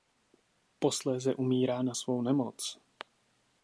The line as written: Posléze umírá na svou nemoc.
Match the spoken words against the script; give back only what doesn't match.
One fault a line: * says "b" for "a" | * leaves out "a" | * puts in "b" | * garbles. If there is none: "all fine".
all fine